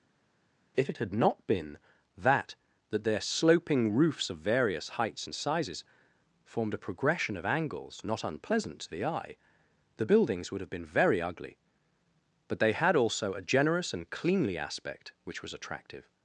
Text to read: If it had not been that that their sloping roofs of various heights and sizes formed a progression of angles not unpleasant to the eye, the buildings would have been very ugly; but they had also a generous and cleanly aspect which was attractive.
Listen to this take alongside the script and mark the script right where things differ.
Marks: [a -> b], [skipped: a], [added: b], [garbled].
If it had not been that that their sloping roofs of various heights and sizes formed a progression of angles not unpleasant to the eye, the buildings would have been very ugly; but they had also a generous and cleanly aspect which was attractive.